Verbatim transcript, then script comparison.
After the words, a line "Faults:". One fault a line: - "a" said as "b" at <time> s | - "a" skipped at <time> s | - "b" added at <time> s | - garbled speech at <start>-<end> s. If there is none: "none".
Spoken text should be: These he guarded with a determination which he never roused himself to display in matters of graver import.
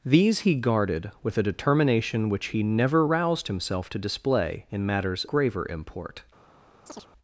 These he guarded with a determination which he never roused himself to display in matters graver import.
Faults:
- "of" skipped at 5.3 s